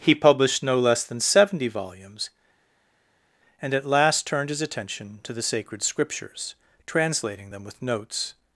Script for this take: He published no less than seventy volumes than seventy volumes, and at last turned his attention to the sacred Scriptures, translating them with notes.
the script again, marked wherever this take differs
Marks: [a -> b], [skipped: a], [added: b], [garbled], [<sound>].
He published no less than seventy volumes [skipped: than seventy volumes,] and at last turned his attention to the sacred Scriptures, translating them with notes.